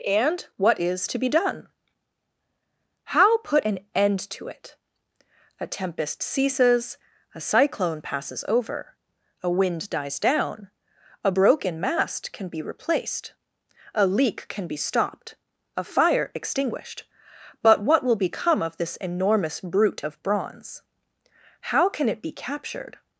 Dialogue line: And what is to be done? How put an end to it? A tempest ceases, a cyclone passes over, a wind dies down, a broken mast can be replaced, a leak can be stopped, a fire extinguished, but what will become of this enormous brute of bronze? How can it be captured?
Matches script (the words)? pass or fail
pass